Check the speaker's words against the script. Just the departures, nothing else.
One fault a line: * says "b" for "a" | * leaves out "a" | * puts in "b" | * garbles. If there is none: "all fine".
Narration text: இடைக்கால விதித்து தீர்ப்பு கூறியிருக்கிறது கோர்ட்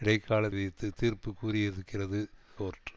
all fine